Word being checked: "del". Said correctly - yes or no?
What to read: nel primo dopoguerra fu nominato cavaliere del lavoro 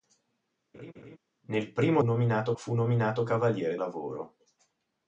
no